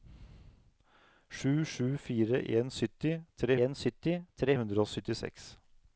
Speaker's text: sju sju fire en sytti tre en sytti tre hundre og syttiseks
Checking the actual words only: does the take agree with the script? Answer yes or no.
yes